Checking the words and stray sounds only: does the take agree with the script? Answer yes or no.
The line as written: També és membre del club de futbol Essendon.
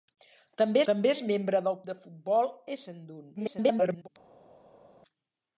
no